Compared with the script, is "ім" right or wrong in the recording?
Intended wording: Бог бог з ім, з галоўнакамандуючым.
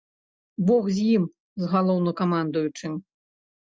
right